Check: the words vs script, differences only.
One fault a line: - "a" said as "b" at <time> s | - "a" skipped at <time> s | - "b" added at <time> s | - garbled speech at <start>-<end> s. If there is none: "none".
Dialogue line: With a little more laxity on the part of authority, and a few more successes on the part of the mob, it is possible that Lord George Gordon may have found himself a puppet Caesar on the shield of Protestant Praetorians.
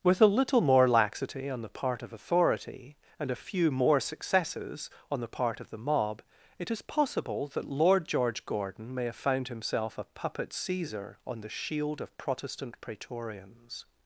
none